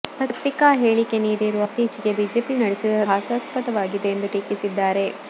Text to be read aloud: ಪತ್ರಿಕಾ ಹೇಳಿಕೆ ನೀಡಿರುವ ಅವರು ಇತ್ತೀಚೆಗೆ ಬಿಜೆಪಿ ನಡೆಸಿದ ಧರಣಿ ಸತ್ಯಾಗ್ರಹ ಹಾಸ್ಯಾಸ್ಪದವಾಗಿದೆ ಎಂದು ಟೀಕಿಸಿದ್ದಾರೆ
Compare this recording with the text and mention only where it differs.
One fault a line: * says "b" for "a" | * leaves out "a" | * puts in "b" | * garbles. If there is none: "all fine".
* leaves out "ಅವರು"
* leaves out "ಧರಣಿ ಸತ್ಯಾಗ್ರಹ"